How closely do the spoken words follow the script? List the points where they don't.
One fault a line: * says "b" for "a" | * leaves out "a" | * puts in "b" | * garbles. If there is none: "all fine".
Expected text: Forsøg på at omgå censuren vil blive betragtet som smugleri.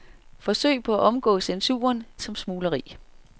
* leaves out "vil blive betragtet"